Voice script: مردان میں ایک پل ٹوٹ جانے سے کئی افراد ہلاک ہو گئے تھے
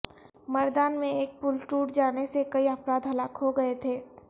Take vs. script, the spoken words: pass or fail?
pass